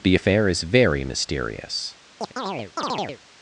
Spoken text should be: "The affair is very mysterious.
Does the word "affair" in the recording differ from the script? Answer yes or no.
no